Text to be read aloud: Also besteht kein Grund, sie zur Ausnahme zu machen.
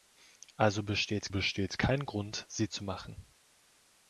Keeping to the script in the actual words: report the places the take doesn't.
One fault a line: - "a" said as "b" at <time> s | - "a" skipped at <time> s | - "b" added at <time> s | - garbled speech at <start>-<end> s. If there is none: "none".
- "besteht" added at 1.3 s
- "zur Ausnahme" skipped at 2.7 s